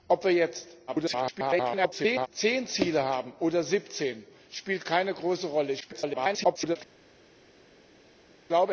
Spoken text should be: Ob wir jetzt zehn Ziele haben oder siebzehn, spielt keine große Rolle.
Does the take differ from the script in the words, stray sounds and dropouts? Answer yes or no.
yes